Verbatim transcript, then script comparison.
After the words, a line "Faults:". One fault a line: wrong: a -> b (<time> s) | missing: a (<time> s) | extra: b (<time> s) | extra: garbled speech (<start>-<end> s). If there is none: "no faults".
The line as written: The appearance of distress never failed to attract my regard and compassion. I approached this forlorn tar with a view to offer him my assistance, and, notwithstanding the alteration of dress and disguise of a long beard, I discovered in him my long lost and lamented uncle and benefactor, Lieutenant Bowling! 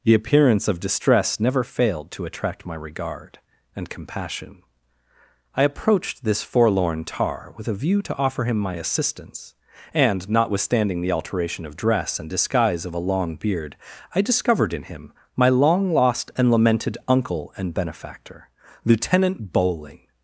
The appearance of distress never failed to attract my regard and compassion. I approached this forlorn tar with a view to offer him my assistance, and, notwithstanding the alteration of dress and disguise of a long beard, I discovered in him my long lost and lamented uncle and benefactor, Lieutenant Bowling!
Faults:
no faults